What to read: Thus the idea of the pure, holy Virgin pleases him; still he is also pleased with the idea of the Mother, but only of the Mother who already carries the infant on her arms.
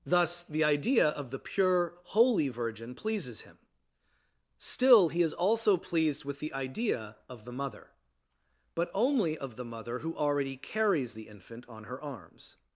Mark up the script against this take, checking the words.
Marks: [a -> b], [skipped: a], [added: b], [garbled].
Thus the idea of the pure, holy Virgin pleases him; still he is also pleased with the idea of the Mother, but only of the Mother who already carries the infant on her arms.